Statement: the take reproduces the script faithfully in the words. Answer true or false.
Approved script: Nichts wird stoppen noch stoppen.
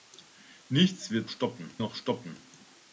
true